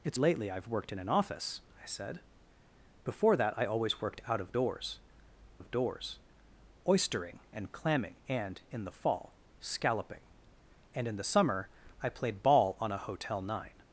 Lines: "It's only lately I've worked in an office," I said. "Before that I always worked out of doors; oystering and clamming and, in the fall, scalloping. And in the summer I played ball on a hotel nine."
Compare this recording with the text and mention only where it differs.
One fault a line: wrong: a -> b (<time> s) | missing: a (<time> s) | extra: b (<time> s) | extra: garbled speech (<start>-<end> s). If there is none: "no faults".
missing: only (0.2 s)
extra: of doors (5.6 s)